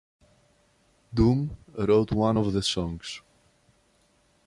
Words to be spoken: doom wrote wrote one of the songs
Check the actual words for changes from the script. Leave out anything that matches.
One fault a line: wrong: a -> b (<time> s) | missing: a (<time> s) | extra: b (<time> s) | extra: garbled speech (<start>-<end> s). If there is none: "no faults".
missing: wrote (2.1 s)